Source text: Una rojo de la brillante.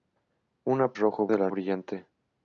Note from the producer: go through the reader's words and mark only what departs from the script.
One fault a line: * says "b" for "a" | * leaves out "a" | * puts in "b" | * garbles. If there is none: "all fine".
all fine